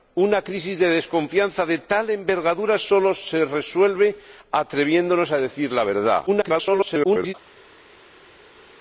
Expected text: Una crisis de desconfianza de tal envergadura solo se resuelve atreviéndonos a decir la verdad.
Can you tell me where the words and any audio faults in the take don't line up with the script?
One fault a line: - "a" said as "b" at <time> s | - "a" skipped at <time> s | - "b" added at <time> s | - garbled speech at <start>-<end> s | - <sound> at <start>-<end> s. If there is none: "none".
- garbled speech at 6.3-7.3 s